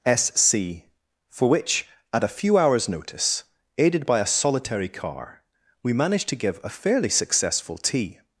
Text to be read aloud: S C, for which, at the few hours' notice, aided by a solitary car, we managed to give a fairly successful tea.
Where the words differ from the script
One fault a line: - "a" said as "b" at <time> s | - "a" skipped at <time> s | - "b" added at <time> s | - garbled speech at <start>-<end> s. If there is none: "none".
- "the" said as "a" at 2.2 s